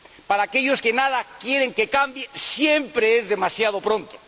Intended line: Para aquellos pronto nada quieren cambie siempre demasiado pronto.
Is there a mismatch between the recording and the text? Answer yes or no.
yes